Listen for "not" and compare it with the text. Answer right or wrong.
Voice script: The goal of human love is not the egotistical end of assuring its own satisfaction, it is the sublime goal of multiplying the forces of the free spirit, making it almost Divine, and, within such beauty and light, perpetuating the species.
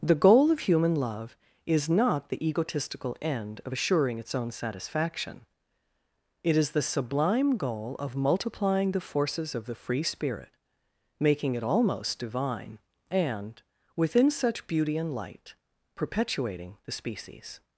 right